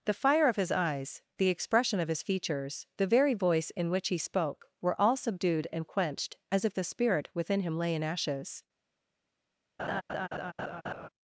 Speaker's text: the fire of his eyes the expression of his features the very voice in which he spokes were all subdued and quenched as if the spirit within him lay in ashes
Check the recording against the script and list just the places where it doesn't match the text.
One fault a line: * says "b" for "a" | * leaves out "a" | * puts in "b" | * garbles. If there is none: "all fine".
* says "spoke" for "spokes"